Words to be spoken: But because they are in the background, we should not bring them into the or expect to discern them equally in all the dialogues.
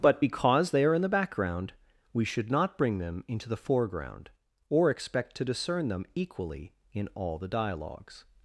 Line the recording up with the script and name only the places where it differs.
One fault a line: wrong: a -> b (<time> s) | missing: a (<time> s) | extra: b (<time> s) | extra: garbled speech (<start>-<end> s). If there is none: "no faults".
extra: foreground (3.6 s)